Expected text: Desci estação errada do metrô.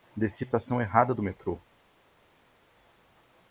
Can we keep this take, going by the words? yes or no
yes